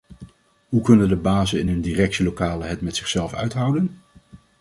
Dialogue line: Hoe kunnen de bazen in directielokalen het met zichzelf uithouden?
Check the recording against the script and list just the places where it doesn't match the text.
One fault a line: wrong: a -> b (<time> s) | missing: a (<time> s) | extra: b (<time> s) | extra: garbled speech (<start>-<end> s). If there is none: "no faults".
extra: hun (1.7 s)